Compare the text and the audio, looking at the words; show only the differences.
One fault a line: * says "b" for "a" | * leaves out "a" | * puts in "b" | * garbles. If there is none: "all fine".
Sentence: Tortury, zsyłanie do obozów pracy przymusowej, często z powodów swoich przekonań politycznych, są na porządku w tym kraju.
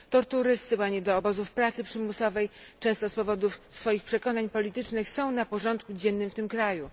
* puts in "dziennym"